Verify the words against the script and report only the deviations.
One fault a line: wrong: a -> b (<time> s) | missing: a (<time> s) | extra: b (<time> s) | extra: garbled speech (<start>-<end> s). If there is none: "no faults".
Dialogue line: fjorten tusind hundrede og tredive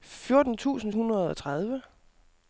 no faults